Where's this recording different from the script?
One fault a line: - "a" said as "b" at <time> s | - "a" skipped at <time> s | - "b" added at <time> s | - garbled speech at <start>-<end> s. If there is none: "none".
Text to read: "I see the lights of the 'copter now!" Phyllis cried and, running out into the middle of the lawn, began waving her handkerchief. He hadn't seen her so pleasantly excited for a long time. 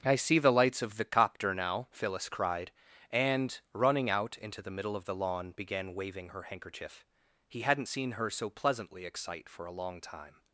- "excited" said as "excite" at 9.1 s